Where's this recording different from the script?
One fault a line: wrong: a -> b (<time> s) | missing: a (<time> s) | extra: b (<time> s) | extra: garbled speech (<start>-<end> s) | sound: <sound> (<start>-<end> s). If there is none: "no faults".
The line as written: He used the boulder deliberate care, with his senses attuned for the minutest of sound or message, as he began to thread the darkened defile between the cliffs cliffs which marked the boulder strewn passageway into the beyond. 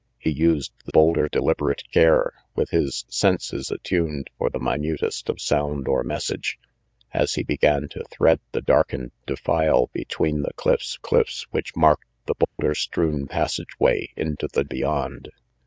sound: dropout (12.4-12.6 s)